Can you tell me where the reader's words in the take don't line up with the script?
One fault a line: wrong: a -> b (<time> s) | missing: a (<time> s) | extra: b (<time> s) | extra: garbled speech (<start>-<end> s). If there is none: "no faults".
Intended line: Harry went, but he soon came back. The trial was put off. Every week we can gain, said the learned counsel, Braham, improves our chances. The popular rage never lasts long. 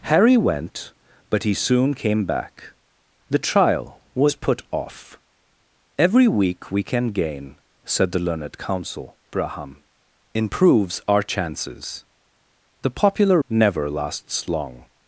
missing: rage (13.4 s)